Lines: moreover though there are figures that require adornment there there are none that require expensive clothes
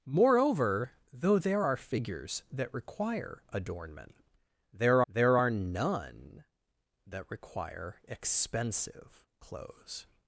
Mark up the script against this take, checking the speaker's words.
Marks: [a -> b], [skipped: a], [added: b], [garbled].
moreover though there are figures that require adornment there there are none that require expensive clothes